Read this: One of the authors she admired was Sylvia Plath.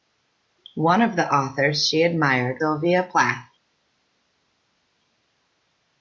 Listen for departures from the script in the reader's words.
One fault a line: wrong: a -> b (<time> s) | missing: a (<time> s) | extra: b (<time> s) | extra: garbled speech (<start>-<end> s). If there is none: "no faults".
missing: was (2.6 s)